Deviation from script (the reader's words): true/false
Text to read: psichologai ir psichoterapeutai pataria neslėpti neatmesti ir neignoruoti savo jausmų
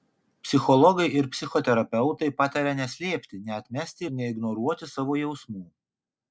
false